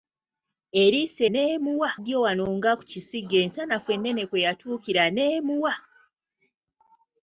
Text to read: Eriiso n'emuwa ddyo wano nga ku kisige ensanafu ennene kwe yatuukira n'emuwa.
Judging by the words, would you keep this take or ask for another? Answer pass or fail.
pass